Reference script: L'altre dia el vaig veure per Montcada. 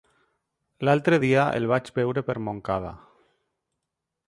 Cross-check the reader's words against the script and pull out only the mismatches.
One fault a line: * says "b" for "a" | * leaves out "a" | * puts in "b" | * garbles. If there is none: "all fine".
all fine